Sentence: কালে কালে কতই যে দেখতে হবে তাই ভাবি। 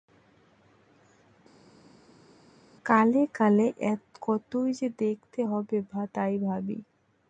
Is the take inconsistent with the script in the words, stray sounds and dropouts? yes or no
no